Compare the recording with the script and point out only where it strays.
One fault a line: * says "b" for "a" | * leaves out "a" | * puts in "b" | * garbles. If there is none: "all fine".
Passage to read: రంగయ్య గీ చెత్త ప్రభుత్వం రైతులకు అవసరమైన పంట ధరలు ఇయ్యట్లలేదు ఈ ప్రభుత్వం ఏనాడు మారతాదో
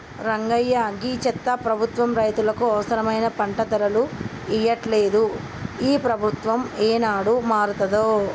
all fine